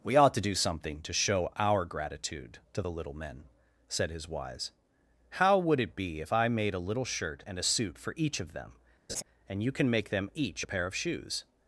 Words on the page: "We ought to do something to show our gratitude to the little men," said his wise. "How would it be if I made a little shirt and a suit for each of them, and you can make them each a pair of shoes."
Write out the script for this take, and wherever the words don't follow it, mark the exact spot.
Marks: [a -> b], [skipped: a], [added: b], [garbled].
"We ought to do something to show our gratitude to the little men," said his wise. "How would it be if I made a little shirt and a suit for each of them, and you can make them each a pair of shoes."